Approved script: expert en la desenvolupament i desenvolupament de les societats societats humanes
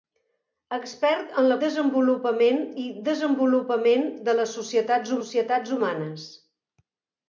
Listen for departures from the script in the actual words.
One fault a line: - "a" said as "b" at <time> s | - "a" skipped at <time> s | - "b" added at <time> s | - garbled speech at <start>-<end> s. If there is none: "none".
none